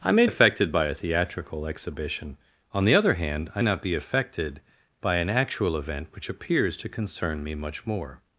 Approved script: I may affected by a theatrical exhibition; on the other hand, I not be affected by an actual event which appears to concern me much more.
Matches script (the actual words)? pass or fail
pass